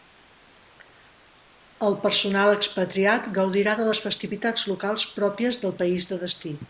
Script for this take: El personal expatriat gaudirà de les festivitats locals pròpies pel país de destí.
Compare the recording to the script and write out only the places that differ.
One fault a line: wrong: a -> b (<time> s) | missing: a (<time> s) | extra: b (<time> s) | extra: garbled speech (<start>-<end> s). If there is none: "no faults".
wrong: pel -> del (5.6 s)